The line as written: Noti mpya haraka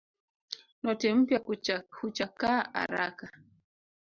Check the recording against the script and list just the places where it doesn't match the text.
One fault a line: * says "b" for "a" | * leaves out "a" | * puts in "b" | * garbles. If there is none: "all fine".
* puts in "huchakaa"